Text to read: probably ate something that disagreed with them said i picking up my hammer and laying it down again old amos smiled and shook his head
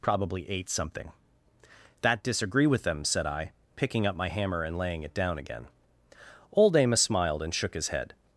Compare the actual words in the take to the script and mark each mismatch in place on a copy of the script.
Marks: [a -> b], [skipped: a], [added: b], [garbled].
probably ate something that [disagreed -> disagree] with them said i picking up my hammer and laying it down again old amos smiled and shook his head